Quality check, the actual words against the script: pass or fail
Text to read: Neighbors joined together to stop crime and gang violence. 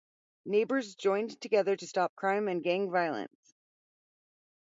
pass